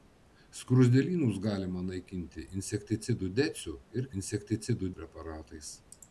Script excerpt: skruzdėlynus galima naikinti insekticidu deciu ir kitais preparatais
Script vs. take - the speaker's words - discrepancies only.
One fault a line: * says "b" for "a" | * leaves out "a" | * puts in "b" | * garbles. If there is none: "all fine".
* says "insekticidu" for "kitais"